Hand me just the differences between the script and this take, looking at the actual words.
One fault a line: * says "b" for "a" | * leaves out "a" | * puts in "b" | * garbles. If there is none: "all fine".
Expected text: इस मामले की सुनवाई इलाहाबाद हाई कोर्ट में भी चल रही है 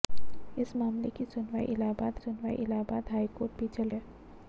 * puts in "सुनवाई इलाहाबाद"
* leaves out "में"
* leaves out "रही"